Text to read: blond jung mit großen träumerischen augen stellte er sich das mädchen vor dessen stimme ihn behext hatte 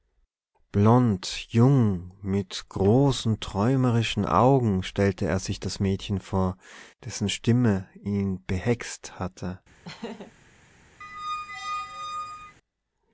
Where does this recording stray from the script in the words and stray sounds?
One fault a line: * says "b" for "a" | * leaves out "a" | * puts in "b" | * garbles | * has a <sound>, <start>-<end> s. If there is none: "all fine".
* has a laugh, 9.8-10.3 s
* has a squeak, 11.0-12.6 s